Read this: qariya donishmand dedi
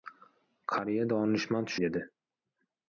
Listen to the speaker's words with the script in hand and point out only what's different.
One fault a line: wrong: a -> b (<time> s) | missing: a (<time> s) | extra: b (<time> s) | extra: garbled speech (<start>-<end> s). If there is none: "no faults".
no faults